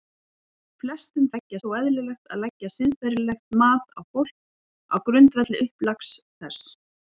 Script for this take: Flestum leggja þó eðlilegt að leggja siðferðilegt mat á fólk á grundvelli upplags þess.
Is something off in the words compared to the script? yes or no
no